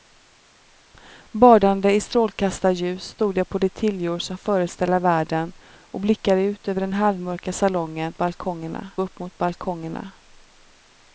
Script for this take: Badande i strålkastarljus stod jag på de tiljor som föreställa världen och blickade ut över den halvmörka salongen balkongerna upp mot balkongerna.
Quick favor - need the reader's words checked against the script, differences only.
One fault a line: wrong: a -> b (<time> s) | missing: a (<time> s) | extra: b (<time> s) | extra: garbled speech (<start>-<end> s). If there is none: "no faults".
no faults